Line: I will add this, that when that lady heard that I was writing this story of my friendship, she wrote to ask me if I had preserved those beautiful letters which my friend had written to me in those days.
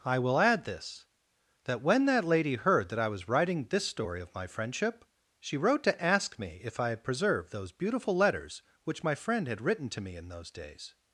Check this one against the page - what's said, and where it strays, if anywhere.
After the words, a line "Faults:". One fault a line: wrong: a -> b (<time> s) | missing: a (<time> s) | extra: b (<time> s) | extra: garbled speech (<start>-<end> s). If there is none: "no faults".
I will add this, that when that lady heard that I was writing this story of my friendship, she wrote to ask me if I had preserved those beautiful letters which my friend had written to me in those days.
Faults:
no faults